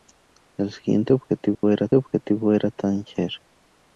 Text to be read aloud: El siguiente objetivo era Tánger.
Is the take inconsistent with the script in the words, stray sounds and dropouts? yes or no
yes